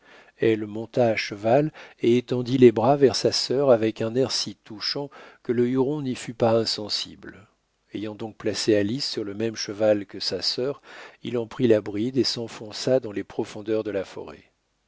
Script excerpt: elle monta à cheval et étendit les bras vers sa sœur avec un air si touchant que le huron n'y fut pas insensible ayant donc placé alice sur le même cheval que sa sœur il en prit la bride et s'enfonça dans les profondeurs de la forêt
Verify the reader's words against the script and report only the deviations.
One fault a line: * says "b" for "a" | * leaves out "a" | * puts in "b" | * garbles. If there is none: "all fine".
all fine